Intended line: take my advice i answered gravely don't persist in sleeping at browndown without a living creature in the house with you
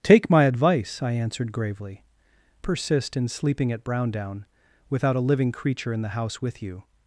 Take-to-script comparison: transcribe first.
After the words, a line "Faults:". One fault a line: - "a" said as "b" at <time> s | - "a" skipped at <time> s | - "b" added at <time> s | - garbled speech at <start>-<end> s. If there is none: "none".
take my advice i answered gravely persist in sleeping at browndown without a living creature in the house with you
Faults:
- "don't" skipped at 2.0 s